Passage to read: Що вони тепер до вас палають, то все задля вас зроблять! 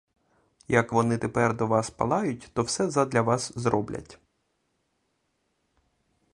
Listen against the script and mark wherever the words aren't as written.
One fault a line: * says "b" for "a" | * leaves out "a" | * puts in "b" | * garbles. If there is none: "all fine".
* says "Як" for "Що"